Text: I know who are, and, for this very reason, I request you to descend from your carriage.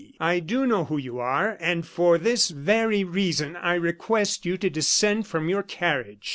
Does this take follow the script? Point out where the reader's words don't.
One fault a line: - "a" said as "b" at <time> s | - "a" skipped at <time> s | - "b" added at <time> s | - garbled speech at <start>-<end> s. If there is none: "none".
- "do" added at 0.4 s
- "you" added at 1.0 s